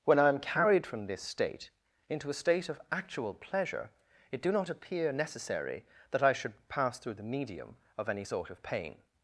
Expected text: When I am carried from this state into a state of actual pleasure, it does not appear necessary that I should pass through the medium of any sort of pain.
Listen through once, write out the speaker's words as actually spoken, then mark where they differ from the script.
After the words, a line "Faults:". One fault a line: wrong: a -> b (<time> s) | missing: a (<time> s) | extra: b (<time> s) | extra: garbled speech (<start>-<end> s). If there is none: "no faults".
When I am carried from this state into a state of actual pleasure, it do not appear necessary that I should pass through the medium of any sort of pain.
Faults:
wrong: does -> do (4.4 s)